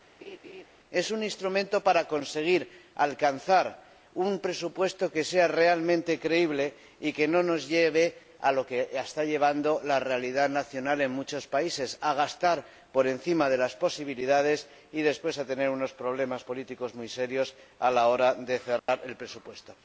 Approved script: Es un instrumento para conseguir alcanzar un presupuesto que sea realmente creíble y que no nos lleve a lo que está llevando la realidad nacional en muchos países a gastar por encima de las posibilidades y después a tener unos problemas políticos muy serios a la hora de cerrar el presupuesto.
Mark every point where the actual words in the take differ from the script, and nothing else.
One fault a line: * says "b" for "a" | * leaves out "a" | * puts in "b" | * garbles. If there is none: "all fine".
all fine